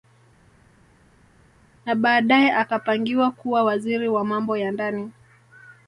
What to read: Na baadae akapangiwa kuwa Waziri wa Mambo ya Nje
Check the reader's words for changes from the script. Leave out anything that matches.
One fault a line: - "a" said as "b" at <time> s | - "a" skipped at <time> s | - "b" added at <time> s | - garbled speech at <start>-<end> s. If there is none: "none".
- "Nje" said as "Ndani" at 4.7 s